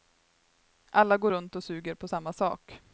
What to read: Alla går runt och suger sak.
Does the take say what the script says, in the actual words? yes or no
no